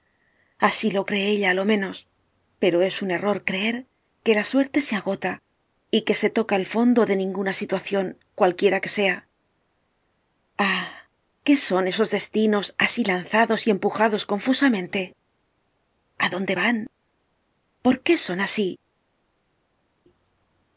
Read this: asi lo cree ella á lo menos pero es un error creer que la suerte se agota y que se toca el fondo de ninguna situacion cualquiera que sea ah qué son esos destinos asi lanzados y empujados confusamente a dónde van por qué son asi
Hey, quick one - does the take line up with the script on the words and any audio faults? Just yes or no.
yes